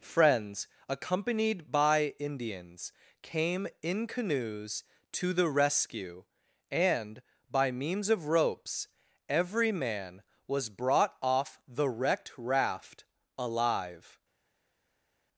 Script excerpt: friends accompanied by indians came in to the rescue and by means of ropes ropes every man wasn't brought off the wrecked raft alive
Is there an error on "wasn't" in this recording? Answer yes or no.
yes